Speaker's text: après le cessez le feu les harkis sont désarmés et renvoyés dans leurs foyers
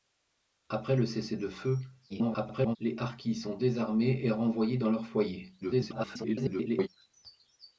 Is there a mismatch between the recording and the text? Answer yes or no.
yes